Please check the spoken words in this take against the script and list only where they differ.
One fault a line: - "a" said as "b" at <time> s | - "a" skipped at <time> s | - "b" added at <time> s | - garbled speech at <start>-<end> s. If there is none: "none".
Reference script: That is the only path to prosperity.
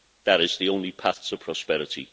none